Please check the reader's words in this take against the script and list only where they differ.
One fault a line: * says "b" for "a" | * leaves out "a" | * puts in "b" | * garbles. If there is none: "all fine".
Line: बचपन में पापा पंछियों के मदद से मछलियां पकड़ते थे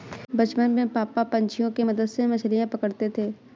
all fine